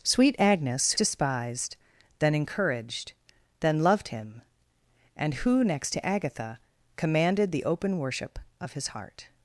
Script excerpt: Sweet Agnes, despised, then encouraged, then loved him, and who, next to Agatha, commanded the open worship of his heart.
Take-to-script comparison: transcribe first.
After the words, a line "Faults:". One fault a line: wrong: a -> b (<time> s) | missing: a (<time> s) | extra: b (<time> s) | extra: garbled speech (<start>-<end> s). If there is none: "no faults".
Sweet Agnes, despised, then encouraged, then loved him, and who, next to Agatha, commanded the open worship of his heart.
Faults:
no faults